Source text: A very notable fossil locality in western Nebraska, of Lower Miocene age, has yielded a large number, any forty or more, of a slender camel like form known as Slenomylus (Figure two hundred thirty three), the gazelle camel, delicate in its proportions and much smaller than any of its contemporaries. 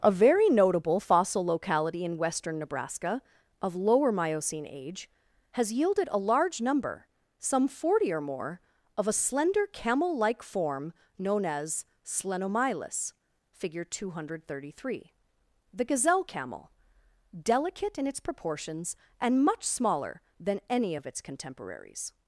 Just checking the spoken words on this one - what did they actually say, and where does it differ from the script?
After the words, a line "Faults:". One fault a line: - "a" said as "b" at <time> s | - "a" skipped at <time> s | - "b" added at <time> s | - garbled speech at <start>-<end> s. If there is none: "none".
A very notable fossil locality in western Nebraska, of Lower Miocene age, has yielded a large number, some forty or more, of a slender camel like form known as Slenomylus (Figure two hundred thirty three), the gazelle camel, delicate in its proportions and much smaller than any of its contemporaries.
Faults:
- "any" said as "some" at 7.4 s